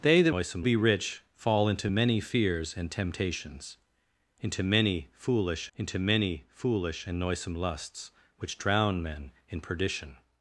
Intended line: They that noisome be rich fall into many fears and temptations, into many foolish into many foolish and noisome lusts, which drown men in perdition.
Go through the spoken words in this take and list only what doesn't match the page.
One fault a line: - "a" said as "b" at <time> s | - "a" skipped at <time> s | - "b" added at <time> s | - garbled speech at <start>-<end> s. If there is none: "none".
none